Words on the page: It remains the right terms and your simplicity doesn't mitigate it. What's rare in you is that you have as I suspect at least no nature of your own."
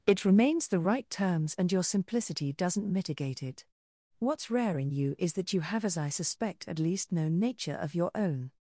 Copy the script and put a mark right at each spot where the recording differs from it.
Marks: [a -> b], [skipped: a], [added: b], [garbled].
It remains the right terms and your simplicity doesn't mitigate it. What's rare in you is that you have as I suspect at least no nature of your own."